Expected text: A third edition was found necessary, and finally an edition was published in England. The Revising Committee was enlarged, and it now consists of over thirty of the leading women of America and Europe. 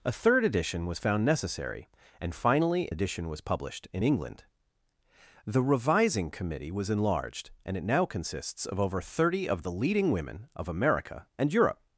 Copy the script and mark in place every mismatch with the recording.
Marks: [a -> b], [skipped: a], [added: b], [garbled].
A third edition was found necessary, and finally [skipped: an] edition was published in England. The Revising Committee was enlarged, and it now consists of over thirty of the leading women of America and Europe.